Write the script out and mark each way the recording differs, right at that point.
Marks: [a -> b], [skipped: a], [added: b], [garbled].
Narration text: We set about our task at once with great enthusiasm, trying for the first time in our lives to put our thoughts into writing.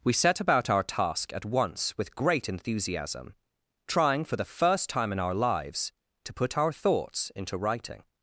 We set about our task at once with great enthusiasm, trying for the first time in our lives to put our thoughts into writing.